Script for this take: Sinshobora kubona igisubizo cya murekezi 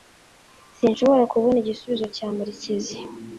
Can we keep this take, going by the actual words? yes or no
yes